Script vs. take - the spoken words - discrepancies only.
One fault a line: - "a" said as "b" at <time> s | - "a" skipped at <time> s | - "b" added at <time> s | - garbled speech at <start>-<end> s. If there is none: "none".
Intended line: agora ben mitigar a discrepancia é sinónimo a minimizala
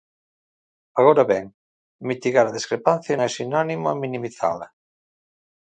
none